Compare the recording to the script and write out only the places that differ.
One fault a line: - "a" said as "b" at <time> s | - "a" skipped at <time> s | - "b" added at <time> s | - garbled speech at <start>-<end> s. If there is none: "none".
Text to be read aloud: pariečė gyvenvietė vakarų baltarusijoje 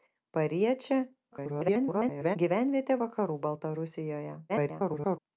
- garbled speech at 1.3-2.4 s
- garbled speech at 4.5-5.2 s